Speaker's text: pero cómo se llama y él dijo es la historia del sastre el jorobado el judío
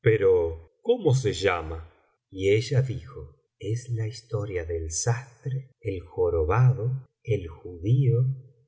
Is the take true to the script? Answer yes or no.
no